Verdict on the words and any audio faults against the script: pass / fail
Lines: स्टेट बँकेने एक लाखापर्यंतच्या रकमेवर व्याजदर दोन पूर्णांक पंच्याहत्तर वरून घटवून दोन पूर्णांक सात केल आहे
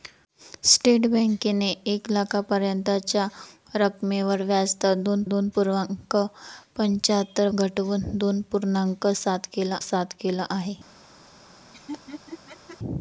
fail